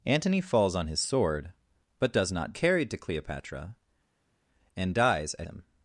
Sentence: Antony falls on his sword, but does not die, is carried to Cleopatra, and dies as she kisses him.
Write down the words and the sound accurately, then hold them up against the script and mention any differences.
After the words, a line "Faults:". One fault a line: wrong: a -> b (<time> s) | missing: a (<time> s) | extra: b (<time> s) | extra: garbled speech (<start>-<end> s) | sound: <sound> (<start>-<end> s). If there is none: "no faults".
Antony falls on his sword, but does not carried to Cleopatra, and dies as him.
Faults:
missing: die is (2.5 s)
missing: she kisses (5.5 s)